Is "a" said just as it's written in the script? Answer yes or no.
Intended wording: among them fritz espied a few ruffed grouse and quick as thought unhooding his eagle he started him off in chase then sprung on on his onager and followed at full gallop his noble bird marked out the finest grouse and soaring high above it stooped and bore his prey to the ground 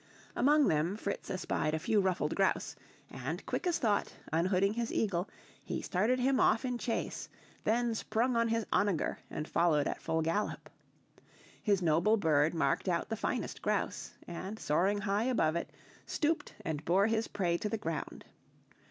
yes